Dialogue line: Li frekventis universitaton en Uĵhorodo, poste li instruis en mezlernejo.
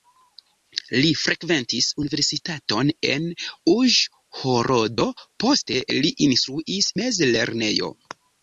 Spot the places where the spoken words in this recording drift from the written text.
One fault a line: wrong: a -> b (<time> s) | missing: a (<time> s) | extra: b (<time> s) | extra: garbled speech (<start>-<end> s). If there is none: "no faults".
missing: en (6.9 s)